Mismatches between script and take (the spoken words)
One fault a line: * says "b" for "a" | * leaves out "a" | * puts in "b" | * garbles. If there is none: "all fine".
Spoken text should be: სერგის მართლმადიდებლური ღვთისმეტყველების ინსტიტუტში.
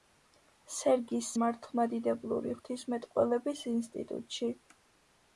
all fine